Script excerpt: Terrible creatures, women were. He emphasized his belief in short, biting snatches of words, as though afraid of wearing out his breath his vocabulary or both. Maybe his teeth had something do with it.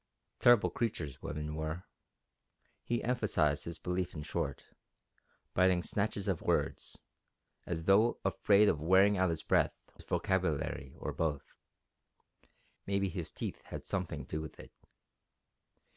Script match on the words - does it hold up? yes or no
yes